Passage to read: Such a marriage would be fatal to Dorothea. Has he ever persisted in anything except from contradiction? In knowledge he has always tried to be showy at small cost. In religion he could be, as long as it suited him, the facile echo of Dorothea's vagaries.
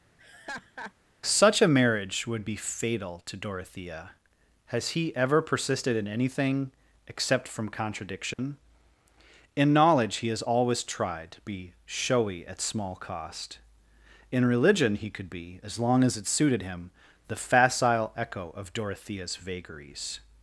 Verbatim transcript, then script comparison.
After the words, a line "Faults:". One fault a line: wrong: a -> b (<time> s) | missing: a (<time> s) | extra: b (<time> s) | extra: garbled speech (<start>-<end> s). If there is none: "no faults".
Such a marriage would be fatal to Dorothea. Has he ever persisted in anything except from contradiction? In knowledge he has always tried to be showy at small cost. In religion he could be, as long as it suited him, the facile echo of Dorothea's vagaries.
Faults:
no faults